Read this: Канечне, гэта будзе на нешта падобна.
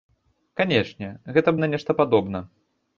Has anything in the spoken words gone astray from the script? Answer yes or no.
yes